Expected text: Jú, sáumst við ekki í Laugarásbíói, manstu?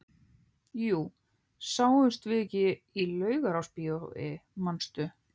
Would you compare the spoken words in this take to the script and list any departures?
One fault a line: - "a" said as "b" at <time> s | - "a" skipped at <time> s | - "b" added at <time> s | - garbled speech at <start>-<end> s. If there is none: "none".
none